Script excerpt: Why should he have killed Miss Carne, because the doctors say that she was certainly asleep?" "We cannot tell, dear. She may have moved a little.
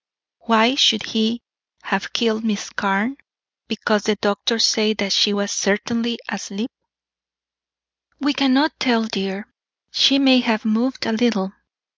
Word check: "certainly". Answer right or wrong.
right